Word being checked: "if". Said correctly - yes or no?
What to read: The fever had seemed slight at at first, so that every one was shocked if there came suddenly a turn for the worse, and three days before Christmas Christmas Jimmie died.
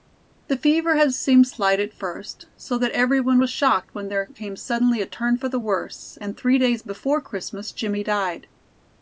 no